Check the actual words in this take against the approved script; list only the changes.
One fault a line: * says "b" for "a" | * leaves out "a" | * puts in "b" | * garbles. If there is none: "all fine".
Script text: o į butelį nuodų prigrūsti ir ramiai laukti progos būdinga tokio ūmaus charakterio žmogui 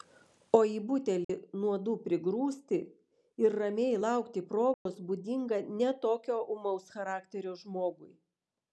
* puts in "ne"